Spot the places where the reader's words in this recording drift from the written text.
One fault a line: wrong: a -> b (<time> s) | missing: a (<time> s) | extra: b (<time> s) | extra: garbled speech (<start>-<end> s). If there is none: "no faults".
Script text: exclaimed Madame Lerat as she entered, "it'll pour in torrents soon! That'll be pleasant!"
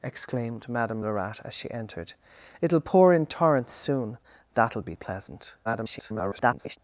extra: garbled speech (5.6-6.8 s)